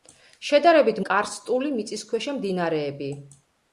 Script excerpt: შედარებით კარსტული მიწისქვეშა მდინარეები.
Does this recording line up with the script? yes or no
yes